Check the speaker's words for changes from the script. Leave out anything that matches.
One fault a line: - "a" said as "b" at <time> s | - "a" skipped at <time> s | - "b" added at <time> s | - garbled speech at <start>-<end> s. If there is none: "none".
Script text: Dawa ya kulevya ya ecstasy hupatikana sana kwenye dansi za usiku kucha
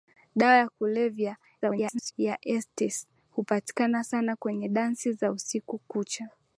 - garbled speech at 1.6-2.1 s